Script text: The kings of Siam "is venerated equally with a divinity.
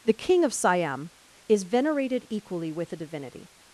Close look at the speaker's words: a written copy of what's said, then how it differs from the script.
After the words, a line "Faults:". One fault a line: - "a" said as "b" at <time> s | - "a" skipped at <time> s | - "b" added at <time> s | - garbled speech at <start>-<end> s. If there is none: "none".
The king of Siam "is venerated equally with a divinity.
Faults:
- "kings" said as "king" at 0.1 s